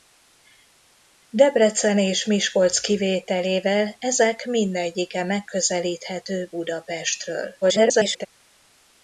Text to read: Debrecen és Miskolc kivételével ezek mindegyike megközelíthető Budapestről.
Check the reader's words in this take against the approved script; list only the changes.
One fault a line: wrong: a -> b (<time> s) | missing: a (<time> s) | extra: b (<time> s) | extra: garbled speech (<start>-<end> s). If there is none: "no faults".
extra: garbled speech (7.6-8.3 s)